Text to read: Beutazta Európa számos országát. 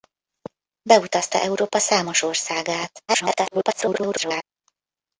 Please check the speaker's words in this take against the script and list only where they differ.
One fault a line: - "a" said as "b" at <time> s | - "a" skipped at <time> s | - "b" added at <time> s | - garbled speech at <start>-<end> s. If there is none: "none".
- garbled speech at 3.1-4.4 s